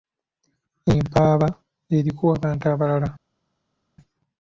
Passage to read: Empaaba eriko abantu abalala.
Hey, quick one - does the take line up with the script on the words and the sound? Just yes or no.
yes